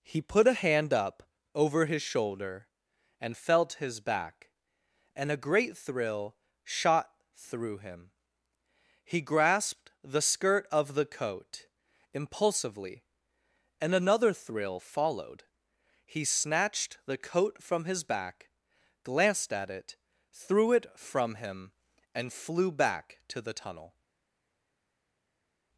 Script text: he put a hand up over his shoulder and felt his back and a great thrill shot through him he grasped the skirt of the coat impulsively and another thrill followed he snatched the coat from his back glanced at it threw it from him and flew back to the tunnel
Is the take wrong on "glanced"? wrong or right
right